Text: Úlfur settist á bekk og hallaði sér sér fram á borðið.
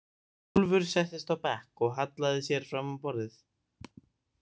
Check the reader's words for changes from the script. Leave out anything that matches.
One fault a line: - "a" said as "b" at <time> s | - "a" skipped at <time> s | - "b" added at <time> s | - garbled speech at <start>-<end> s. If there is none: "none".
- "sér" skipped at 2.7 s